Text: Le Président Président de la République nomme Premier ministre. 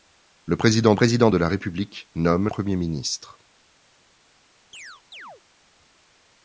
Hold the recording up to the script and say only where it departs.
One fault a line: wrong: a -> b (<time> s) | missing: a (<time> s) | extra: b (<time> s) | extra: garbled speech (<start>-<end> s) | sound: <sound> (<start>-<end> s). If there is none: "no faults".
sound: chirp (4.7-5.4 s)